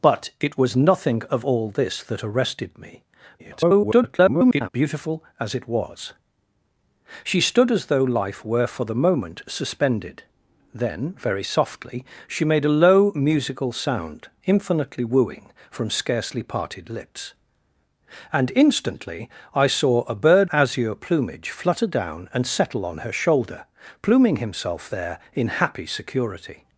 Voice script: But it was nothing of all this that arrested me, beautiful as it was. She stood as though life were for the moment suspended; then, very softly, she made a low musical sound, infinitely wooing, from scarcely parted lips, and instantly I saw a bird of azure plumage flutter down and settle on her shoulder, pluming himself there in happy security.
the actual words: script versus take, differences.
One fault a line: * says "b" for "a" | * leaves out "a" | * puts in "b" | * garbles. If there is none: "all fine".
* garbles
* leaves out "of"